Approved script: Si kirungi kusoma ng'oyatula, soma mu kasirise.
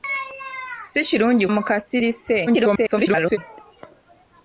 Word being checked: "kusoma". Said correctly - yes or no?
no